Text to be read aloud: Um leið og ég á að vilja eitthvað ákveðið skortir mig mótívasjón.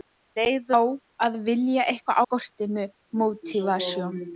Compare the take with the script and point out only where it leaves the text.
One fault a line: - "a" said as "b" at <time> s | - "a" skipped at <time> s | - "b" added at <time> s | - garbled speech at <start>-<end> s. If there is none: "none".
- "og ég" skipped at 0.7 s
- "ákveðið" skipped at 2.2 s